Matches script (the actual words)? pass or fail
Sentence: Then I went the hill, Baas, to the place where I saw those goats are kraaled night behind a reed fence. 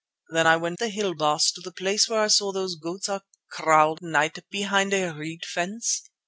pass